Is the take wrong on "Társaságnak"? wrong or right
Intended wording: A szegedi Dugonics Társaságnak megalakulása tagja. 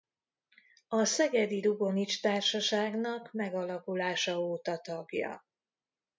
right